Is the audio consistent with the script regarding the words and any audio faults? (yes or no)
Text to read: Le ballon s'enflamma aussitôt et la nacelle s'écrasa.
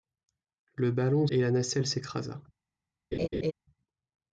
no